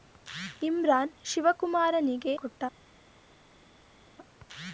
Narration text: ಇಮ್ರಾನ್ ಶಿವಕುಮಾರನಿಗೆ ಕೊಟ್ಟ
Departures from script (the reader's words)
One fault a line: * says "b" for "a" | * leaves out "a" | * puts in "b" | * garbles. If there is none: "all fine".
all fine